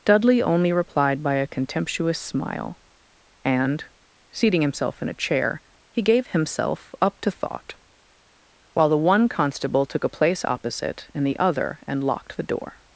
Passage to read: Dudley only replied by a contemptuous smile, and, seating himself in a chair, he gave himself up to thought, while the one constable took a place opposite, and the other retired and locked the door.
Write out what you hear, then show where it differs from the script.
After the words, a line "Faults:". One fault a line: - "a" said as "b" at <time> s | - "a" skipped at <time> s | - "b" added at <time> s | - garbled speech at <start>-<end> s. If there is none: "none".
Dudley only replied by a contemptuous smile, and, seating himself in a chair, he gave himself up to thought, while the one constable took a place opposite, and the other and locked the door.
Faults:
- "retired" skipped at 11.8 s